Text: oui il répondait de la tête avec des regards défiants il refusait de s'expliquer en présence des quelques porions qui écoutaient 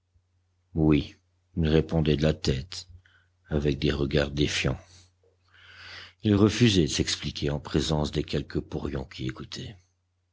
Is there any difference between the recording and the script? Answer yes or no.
no